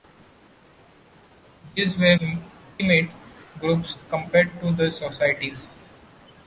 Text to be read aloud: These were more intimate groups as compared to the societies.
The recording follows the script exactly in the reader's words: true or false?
false